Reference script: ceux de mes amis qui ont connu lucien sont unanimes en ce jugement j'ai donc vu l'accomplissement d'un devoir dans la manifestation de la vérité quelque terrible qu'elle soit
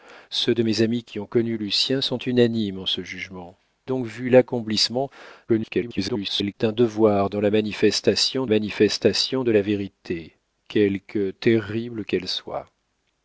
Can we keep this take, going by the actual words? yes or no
no